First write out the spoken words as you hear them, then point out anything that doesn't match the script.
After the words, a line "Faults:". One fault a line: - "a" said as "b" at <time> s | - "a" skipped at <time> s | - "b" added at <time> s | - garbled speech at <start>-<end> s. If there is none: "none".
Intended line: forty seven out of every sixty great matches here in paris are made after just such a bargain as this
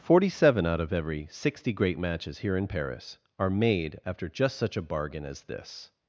forty seven out of every sixty great matches here in paris are made after just such a bargain as this
Faults:
none